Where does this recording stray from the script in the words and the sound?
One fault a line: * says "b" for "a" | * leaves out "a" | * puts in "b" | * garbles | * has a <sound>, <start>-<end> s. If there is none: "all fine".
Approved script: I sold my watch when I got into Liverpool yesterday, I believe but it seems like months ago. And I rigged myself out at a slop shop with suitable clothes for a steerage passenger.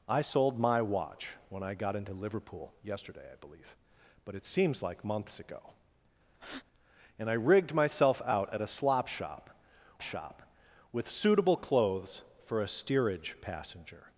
* has a breath, 6.3-6.6 s
* puts in "shop"